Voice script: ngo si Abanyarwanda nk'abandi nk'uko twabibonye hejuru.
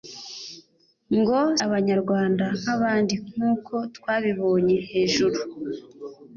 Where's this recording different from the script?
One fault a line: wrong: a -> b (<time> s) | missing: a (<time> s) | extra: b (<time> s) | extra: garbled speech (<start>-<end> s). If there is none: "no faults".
missing: si (1.4 s)